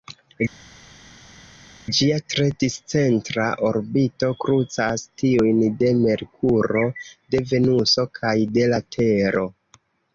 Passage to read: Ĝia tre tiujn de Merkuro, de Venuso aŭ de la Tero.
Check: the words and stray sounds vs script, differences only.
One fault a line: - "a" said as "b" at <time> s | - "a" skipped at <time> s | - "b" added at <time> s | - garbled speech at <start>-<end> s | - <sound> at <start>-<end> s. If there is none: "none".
- "discentra orbito krucas" added at 2.6 s
- "aŭ" said as "kaj" at 8.2 s